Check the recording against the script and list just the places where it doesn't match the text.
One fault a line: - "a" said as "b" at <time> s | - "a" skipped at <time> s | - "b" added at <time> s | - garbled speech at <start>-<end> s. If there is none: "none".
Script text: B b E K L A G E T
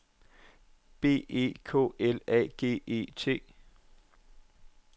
- "b" skipped at 1.3 s